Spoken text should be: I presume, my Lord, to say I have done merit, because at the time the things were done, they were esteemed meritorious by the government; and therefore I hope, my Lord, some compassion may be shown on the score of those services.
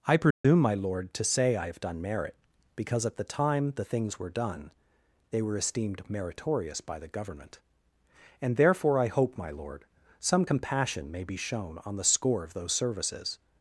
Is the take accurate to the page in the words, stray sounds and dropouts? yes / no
no